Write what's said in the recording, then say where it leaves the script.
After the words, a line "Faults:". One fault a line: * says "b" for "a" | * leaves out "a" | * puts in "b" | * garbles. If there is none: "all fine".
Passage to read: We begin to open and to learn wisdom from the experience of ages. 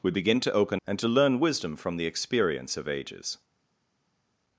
We begin to open and to learn wisdom from the experience of ages.
Faults:
all fine